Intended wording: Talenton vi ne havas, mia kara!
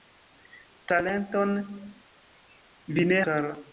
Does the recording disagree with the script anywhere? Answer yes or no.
yes